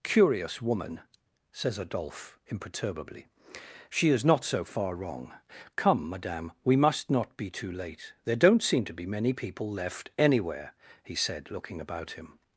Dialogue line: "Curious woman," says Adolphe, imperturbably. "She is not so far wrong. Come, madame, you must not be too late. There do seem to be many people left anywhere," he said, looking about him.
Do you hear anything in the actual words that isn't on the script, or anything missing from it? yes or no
yes